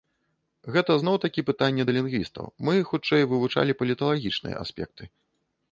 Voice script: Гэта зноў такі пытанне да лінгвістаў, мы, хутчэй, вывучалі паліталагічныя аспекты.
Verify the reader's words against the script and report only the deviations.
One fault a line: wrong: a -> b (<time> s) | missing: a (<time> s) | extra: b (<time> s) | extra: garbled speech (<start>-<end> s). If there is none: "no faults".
no faults